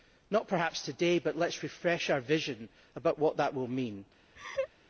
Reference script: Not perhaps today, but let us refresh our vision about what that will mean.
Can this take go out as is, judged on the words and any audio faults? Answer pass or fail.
fail